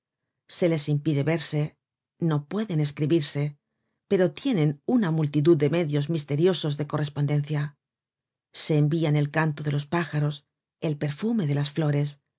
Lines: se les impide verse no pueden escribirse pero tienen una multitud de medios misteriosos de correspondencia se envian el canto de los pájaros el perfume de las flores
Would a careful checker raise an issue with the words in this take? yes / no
no